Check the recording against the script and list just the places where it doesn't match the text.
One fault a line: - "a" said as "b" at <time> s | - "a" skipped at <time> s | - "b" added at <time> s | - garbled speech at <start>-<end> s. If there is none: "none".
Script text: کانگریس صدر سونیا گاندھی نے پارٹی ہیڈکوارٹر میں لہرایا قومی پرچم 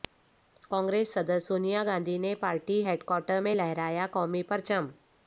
none